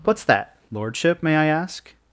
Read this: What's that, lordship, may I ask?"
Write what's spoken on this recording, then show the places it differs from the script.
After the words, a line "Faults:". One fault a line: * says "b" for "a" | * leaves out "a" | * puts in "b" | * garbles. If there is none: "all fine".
What's that, lordship, may I ask?"
Faults:
all fine